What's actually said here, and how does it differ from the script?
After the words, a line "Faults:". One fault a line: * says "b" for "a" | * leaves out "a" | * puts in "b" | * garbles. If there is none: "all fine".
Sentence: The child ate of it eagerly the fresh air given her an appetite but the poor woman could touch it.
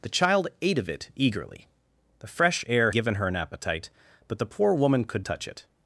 The child ate of it eagerly the fresh air given her an appetite but the poor woman could touch it.
Faults:
all fine